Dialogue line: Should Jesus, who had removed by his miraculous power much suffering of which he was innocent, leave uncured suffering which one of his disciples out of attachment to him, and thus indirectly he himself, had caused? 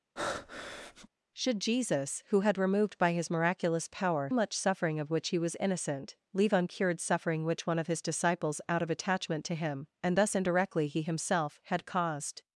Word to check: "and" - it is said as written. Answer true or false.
true